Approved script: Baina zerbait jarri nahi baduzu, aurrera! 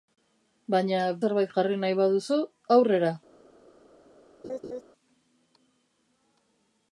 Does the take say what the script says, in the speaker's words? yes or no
yes